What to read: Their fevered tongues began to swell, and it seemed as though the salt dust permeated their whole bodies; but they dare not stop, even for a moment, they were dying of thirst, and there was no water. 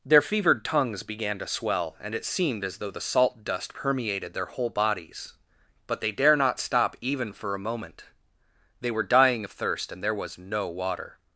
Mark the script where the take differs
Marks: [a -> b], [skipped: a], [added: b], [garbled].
Their fevered tongues began to swell, and it seemed as though the salt dust permeated their whole bodies; but they dare not stop, even for a moment, they were dying of thirst, and there was no water.